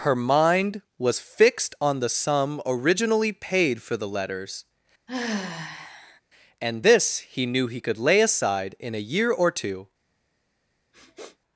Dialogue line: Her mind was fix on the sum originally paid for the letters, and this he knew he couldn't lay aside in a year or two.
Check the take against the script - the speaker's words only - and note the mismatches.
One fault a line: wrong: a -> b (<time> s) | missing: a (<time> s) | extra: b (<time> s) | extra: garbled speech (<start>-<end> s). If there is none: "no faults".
wrong: fix -> fixed (1.2 s)
wrong: couldn't -> could (7.8 s)